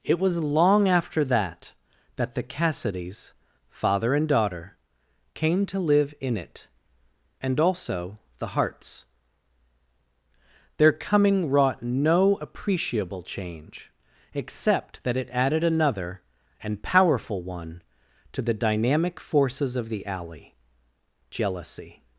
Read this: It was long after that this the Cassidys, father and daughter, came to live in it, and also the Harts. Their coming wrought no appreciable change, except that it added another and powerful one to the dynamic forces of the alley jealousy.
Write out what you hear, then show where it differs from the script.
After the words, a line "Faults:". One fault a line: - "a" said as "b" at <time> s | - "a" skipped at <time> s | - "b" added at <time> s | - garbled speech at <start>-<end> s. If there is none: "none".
It was long after that that the Cassidys, father and daughter, came to live in it, and also the Harts. Their coming wrought no appreciable change, except that it added another and powerful one to the dynamic forces of the alley jealousy.
Faults:
- "this" said as "that" at 2.1 s